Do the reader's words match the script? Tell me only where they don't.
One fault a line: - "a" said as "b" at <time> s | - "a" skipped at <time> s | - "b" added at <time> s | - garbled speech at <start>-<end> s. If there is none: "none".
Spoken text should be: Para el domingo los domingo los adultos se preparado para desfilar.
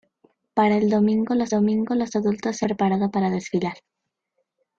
none